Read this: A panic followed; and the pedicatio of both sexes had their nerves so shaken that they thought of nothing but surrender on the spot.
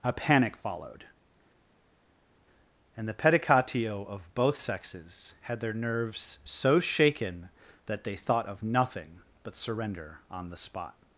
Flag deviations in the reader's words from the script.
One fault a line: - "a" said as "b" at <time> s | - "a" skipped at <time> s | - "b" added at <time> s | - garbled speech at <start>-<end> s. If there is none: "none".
none